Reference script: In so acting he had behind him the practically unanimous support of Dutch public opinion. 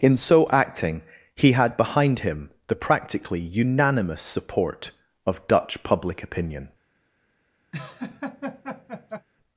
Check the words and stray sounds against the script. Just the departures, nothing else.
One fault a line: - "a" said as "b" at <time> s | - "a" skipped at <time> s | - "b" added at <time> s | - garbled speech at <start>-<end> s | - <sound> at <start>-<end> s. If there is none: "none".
- laugh at 7.7-9.3 s